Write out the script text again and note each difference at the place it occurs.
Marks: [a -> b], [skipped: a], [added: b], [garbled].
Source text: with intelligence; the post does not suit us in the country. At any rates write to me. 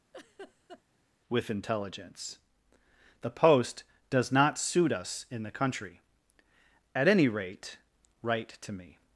with intelligence; the post does not suit us in the country. At any [rates -> rate] write to me.